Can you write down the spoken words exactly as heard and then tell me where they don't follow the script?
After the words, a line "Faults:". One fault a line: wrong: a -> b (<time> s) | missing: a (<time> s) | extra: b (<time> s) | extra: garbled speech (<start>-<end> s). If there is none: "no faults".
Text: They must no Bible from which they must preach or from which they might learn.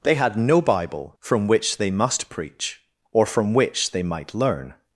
They had no Bible from which they must preach or from which they might learn.
Faults:
wrong: must -> had (0.1 s)